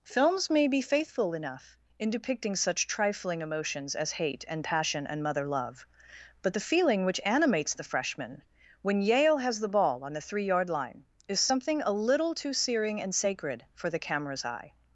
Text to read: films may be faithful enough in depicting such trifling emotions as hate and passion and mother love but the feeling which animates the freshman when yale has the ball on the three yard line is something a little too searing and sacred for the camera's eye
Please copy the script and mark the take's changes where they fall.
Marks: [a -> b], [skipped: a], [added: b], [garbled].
films may be faithful enough in depicting such trifling emotions as hate and passion and mother love but the feeling which animates the freshman when yale has the ball on the three yard line is something a little too searing and sacred for the camera's eye